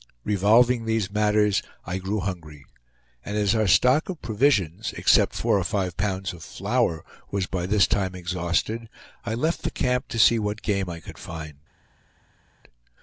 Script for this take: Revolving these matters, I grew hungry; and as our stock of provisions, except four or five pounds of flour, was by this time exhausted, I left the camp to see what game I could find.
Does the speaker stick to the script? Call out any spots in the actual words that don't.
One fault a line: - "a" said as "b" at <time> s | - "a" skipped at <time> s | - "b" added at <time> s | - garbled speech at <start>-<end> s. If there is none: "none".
none